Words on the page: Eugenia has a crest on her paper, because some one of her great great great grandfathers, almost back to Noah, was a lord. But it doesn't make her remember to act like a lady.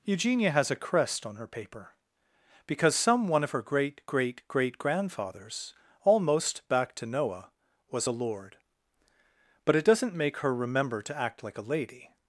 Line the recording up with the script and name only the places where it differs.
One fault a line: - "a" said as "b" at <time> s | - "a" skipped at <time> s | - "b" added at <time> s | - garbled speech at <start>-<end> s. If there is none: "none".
none